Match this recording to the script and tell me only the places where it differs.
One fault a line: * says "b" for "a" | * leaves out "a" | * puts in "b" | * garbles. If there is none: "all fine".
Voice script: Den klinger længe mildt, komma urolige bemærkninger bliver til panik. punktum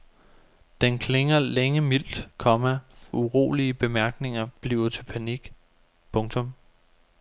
all fine